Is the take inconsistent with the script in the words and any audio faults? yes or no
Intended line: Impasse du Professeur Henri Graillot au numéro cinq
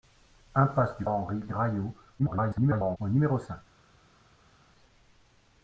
yes